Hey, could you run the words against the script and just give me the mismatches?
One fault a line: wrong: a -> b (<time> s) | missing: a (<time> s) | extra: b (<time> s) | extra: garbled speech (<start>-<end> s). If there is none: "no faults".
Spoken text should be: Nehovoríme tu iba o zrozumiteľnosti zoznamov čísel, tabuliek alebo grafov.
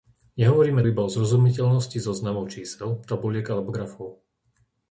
missing: tu (0.8 s)